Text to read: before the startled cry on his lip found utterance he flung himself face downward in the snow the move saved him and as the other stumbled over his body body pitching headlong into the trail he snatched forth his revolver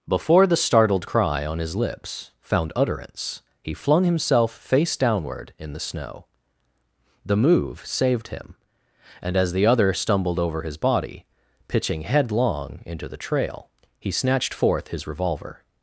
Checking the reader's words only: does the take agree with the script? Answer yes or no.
no